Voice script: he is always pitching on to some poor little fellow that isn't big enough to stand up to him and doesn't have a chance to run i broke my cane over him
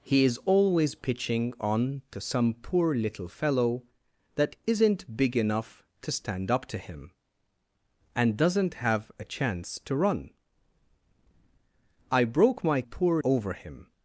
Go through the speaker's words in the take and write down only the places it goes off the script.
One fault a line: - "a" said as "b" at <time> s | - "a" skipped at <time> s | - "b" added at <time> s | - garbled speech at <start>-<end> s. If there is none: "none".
- "cane" said as "poor" at 12.8 s